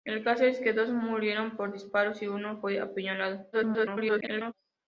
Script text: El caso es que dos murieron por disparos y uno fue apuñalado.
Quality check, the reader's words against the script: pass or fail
fail